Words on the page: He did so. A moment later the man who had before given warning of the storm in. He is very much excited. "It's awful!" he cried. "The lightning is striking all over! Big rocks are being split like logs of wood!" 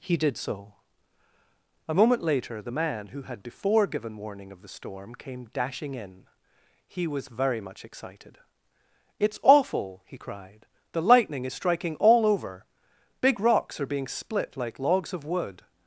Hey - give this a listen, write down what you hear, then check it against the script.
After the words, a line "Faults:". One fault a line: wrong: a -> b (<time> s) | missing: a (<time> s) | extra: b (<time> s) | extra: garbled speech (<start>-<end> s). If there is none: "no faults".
He did so. A moment later the man who had before given warning of the storm came dashing in. He was very much excited. "It's awful!" he cried. "The lightning is striking all over! Big rocks are being split like logs of wood!"
Faults:
extra: came dashing (5.1 s)
wrong: is -> was (7.1 s)